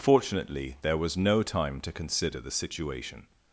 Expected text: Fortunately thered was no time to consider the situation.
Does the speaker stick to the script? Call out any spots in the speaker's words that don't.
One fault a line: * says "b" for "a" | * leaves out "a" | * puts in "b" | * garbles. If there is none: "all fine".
* says "there" for "thered"